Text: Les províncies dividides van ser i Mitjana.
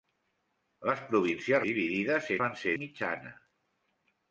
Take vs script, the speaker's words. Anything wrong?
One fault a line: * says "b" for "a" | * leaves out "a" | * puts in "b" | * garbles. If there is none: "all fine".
all fine